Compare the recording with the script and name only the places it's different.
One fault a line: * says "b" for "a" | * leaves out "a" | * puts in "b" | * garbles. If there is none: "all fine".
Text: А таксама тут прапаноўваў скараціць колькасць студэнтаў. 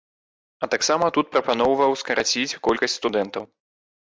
all fine